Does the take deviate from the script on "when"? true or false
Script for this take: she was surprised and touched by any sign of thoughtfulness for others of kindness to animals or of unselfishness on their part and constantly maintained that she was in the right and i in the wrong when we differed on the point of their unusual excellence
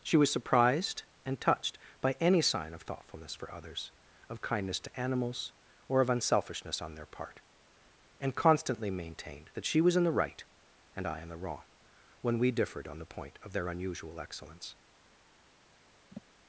false